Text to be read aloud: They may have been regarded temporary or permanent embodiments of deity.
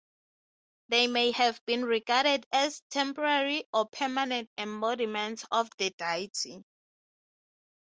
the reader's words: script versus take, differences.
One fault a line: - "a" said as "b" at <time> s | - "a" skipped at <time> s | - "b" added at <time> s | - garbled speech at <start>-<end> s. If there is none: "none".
- "as" added at 2.5 s
- "the" added at 5.8 s